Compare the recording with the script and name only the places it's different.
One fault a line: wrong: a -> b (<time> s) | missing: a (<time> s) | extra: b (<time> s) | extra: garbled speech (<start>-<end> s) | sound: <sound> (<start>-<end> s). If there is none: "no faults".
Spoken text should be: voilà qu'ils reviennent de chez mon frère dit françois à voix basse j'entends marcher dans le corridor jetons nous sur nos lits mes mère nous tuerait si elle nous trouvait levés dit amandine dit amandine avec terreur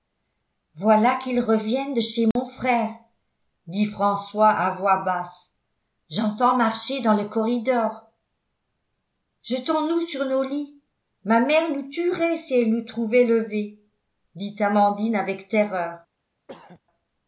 sound: dropout (2.3-2.4 s)
wrong: mes -> ma (11.2 s)
missing: dit amandine (15.1 s)
sound: throat clearing (16.5-16.8 s)